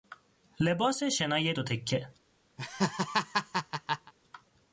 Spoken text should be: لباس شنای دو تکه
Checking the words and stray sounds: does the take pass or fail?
fail